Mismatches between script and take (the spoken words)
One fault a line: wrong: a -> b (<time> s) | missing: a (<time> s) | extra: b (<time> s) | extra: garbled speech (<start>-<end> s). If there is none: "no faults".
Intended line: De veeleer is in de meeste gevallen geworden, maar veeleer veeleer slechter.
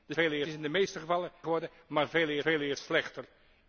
no faults